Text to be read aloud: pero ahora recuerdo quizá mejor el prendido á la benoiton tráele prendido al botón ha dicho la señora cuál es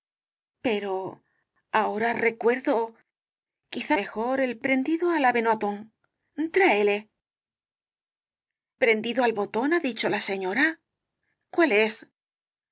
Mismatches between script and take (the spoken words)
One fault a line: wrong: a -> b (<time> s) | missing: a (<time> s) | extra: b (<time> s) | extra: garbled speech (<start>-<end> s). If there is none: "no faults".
no faults